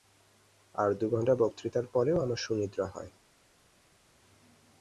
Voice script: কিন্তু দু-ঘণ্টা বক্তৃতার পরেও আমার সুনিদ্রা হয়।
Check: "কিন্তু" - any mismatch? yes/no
yes